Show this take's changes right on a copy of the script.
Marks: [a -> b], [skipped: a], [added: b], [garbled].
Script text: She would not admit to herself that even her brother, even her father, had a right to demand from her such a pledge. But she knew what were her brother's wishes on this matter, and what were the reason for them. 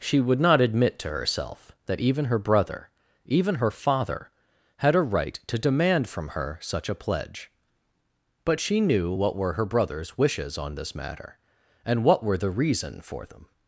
She would not admit to herself that even her brother, even her father, had a right to demand from her such a pledge. But she knew what were her brother's wishes on this matter, and what were the reason for them.